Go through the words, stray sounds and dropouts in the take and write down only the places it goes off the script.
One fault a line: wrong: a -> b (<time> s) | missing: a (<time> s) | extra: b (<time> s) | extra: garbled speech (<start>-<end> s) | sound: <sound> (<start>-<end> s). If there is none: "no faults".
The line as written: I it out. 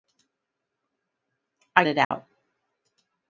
sound: dropout (2.0-2.1 s)